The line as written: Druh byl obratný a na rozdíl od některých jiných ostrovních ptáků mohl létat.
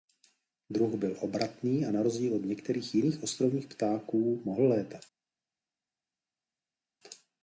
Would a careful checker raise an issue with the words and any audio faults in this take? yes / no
no